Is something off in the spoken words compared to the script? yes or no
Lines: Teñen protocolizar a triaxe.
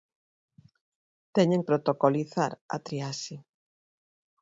no